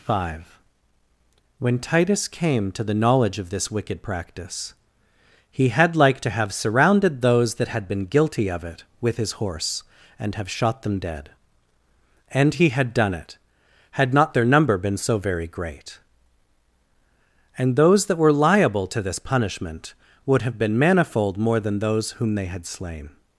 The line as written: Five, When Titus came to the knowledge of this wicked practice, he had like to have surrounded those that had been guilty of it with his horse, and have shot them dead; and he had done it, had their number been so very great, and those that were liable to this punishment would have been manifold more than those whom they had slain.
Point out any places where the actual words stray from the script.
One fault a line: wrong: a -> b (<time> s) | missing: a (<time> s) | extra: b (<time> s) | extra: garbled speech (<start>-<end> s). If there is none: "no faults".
extra: not (14.1 s)